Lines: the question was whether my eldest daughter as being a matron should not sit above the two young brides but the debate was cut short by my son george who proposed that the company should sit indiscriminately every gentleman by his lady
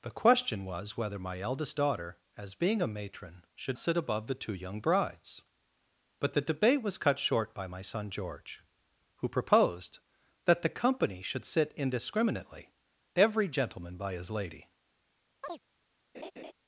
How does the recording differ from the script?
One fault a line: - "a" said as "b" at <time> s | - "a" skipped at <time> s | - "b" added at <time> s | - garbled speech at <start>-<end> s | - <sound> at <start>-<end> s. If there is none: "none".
- "not" skipped at 3.8 s
- chirp at 15.4-15.6 s
- laugh at 16.1-16.5 s